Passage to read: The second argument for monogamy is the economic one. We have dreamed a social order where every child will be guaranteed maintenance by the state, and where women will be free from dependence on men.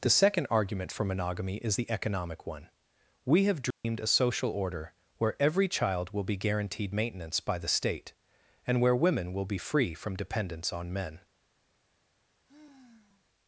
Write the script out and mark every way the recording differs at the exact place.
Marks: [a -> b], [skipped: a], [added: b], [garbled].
The second argument for monogamy is the economic one. We have dreamed a social order where every child will be guaranteed maintenance by the state, and where women will be free from dependence on men.